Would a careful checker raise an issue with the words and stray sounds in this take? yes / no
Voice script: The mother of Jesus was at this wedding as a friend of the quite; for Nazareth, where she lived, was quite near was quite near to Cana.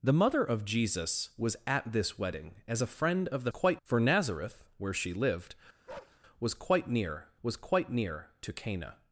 yes